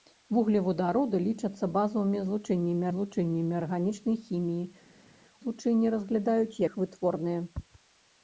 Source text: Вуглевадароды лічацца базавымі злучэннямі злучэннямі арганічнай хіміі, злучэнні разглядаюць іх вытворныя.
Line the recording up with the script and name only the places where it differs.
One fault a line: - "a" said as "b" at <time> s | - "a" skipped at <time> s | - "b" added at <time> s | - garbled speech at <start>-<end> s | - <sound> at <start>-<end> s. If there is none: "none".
none